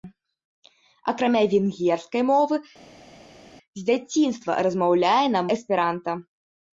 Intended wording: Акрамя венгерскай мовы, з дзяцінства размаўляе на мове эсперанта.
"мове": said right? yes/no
no